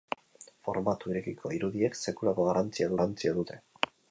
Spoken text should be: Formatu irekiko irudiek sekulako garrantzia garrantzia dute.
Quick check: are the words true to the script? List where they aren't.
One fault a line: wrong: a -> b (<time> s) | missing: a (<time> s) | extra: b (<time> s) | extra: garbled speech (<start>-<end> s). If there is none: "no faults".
no faults